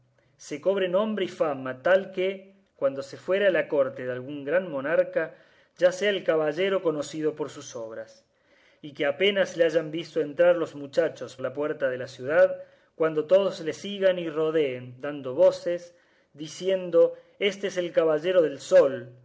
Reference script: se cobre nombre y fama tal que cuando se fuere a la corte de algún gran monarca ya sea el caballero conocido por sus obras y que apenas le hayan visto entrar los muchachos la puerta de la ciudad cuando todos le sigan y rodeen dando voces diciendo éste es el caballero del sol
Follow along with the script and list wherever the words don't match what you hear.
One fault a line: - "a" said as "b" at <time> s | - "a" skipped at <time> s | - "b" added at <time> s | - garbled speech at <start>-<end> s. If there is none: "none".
none